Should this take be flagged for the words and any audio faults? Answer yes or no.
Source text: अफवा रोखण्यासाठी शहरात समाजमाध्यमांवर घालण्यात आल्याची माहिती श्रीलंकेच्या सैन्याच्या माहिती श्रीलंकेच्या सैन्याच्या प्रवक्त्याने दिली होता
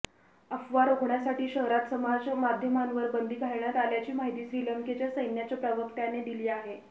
yes